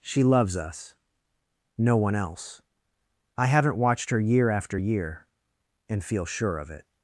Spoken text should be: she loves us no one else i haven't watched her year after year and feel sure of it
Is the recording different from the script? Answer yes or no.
no